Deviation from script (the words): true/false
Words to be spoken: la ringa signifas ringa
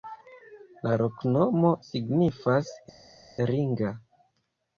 true